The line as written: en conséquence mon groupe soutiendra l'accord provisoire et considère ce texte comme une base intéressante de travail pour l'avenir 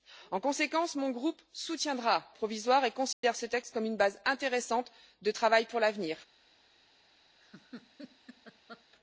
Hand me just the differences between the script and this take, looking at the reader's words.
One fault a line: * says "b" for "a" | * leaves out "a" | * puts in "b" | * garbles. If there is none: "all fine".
* leaves out "l'accord"